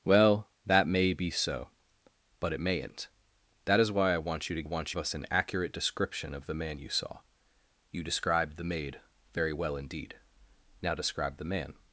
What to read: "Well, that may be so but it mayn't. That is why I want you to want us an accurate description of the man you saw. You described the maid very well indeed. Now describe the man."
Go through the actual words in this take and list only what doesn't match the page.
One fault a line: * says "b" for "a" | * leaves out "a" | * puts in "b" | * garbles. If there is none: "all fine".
all fine